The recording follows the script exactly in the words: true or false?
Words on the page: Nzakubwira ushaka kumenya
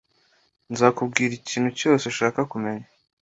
false